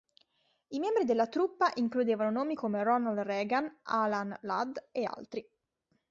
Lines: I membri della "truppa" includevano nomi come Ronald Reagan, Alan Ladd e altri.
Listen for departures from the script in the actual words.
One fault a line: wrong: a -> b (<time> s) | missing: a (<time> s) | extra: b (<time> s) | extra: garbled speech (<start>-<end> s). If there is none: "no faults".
no faults